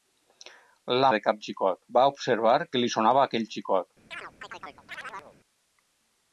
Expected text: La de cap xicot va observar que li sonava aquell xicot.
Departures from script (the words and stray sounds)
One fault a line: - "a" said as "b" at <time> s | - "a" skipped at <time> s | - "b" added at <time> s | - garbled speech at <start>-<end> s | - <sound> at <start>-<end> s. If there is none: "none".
- chirp at 4.1-5.4 s